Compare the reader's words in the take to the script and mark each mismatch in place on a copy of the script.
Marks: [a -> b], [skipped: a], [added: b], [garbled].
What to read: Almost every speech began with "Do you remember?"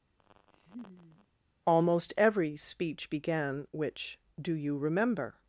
Almost every speech began [with -> which] "Do you remember?"